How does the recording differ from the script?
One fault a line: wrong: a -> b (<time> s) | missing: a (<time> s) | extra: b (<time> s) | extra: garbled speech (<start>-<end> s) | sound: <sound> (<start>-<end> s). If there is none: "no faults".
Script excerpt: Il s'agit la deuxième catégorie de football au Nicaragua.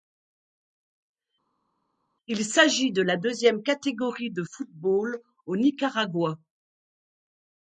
extra: de (2.9 s)